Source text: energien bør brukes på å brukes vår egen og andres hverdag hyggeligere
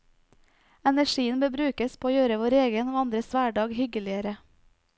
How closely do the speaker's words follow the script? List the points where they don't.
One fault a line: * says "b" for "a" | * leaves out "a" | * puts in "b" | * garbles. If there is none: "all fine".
* says "gjøre" for "brukes"